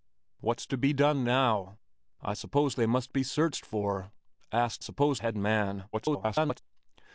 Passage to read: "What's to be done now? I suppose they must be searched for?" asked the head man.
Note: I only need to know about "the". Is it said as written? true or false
false